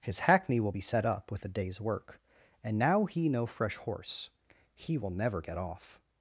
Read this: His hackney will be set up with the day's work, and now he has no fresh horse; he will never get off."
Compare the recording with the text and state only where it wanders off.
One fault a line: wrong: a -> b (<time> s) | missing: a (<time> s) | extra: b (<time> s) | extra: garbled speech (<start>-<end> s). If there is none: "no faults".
wrong: the -> a (1.4 s)
missing: has (3.3 s)